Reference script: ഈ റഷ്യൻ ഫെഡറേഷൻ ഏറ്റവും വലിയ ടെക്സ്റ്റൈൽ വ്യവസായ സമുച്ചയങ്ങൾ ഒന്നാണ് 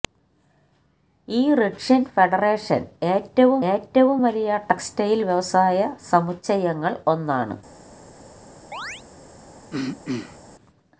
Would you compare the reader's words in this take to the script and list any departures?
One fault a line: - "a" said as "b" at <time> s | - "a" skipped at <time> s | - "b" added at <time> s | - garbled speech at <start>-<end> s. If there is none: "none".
- "ഏറ്റവും" added at 3.7 s